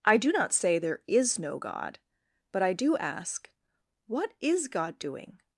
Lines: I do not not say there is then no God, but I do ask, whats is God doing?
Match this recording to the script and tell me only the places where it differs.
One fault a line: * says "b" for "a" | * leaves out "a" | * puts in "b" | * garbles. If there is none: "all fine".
* leaves out "not"
* leaves out "then"
* says "what" for "whats"